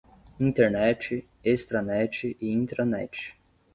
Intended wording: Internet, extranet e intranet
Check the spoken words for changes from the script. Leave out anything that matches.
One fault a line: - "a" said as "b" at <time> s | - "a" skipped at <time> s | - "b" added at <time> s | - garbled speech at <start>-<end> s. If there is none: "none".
none